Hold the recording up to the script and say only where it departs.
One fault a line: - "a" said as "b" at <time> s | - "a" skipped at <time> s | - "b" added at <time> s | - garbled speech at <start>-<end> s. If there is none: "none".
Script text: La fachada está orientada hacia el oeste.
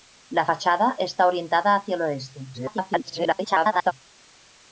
- garbled speech at 2.5-3.9 s